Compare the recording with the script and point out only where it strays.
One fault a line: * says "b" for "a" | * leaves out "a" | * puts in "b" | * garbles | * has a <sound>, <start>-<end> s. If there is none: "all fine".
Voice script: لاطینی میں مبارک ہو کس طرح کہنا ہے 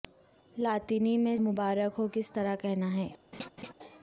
* has a laugh, 3.3-3.7 s